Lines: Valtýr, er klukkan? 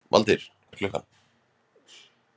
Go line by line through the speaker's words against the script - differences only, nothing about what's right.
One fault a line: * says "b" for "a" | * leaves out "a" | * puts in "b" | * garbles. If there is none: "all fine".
all fine